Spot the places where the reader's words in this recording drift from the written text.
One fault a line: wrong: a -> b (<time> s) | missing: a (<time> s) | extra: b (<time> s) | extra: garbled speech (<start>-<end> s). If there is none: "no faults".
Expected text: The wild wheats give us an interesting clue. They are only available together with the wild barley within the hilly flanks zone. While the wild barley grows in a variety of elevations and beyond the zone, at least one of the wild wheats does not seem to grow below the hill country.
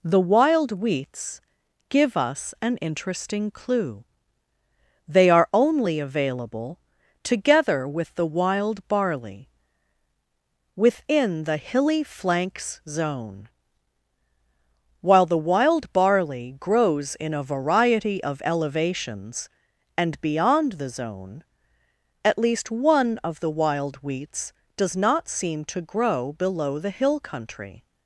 no faults